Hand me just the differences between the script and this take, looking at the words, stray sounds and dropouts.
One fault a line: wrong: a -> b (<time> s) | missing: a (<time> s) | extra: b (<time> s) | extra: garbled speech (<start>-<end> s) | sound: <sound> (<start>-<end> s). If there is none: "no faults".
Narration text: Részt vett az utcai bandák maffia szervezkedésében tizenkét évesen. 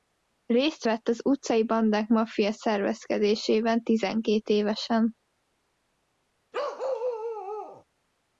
sound: bark (6.5-7.8 s)